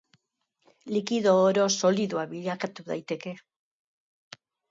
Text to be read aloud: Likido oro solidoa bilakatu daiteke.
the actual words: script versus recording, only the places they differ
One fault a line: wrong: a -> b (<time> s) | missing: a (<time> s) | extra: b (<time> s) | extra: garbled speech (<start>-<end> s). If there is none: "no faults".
no faults